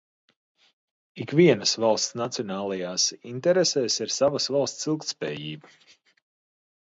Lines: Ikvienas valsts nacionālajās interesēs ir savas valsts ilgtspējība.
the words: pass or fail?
pass